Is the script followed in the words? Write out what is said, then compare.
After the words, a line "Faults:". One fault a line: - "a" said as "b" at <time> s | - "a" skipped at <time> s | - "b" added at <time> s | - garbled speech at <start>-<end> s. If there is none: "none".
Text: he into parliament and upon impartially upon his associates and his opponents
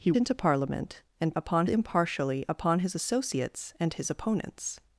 he into parliament and upon impartially upon his associates and his opponents
Faults:
none